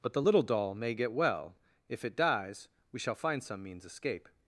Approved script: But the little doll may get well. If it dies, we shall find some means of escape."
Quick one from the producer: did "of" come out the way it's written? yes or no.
no